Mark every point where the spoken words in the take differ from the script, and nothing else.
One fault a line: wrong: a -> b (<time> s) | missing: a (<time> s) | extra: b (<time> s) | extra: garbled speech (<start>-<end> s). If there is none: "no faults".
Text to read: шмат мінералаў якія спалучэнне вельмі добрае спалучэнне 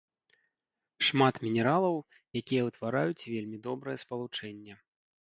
wrong: спалучэнне -> ўтвараюць (2.7 s)